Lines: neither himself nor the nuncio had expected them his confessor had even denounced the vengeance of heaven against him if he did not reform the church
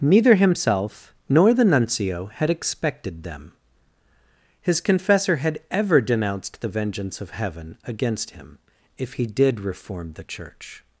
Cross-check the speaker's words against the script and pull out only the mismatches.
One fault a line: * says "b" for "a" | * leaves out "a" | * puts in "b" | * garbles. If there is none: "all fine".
* says "ever" for "even"
* leaves out "not"